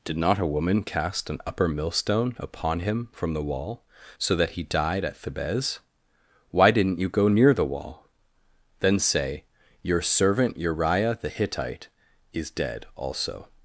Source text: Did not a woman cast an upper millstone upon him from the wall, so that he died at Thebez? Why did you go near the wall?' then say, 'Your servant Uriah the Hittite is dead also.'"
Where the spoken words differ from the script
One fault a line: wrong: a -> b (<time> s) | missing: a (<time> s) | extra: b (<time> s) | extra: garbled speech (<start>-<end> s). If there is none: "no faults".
wrong: did -> didn't (6.7 s)